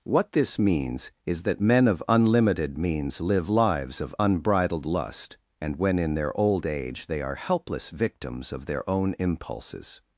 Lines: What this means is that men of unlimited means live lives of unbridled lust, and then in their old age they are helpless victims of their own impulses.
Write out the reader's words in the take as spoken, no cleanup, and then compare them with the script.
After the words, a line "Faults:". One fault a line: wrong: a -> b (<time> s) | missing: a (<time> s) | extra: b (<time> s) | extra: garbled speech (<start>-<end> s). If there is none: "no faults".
What this means is that men of unlimited means live lives of unbridled lust, and when in their old age they are helpless victims of their own impulses.
Faults:
wrong: then -> when (5.7 s)